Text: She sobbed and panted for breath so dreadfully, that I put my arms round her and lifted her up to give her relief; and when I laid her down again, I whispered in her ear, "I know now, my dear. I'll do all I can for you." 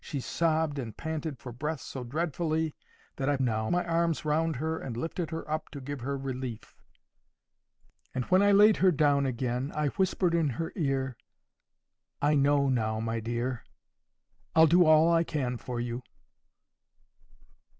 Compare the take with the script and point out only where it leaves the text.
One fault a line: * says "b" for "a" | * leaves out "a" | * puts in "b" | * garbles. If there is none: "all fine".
* says "now" for "put"